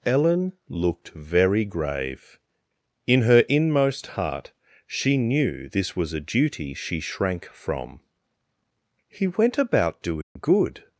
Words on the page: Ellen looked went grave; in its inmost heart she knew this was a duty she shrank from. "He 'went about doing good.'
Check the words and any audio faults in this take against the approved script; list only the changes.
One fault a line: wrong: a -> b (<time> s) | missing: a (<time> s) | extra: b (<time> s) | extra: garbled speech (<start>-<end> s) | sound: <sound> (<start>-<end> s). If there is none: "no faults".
wrong: went -> very (1.1 s)
wrong: its -> her (3.2 s)
sound: dropout (10.2-10.4 s)